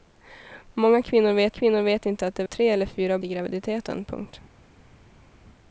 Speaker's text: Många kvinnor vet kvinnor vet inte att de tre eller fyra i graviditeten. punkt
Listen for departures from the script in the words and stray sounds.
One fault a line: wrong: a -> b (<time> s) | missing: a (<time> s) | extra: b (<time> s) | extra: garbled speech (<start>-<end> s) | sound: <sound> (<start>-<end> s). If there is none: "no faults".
no faults